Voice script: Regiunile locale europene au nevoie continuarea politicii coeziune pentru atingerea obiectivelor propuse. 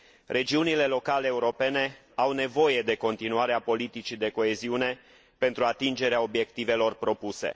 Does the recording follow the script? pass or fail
fail